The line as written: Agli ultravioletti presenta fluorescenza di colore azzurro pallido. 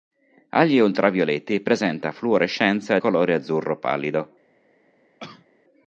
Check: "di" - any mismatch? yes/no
yes